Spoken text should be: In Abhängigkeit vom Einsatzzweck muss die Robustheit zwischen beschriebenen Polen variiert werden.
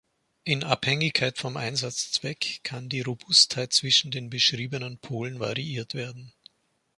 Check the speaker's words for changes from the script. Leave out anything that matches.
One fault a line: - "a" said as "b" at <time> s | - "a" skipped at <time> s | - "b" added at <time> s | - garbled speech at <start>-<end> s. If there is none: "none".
- "muss" said as "kann" at 2.6 s
- "den" added at 4.1 s